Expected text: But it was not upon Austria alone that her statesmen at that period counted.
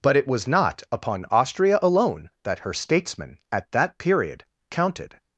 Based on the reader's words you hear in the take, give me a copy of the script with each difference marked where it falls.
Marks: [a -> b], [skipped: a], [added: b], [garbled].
But it was not upon Austria alone that her statesmen at that period counted.